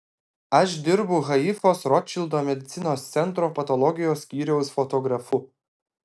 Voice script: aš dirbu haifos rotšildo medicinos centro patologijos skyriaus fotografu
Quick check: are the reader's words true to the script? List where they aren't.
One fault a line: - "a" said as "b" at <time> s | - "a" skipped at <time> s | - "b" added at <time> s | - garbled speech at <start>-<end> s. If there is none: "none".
none